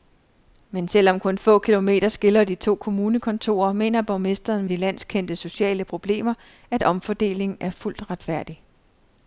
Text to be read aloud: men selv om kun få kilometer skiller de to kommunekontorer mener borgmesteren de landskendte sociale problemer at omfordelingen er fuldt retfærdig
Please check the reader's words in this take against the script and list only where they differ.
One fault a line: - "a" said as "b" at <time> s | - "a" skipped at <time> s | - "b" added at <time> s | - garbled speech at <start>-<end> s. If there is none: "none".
none